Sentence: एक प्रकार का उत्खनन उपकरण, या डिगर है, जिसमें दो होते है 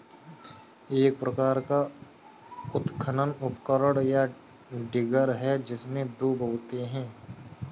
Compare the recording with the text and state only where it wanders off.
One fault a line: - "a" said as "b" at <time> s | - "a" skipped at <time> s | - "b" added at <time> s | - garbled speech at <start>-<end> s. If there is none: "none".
none